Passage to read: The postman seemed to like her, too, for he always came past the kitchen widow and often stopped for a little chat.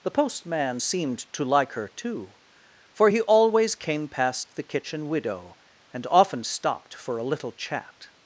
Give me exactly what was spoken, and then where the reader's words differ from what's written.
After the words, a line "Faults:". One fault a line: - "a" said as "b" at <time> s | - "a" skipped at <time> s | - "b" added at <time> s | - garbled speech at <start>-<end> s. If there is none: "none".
The postman seemed to like her, too, for he always came past the kitchen widow and often stopped for a little chat.
Faults:
none